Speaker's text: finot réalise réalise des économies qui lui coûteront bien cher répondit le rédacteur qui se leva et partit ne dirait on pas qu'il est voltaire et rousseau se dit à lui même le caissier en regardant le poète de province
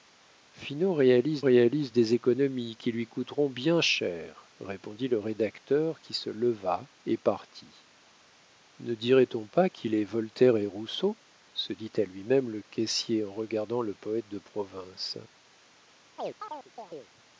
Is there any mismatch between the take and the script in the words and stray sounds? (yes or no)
yes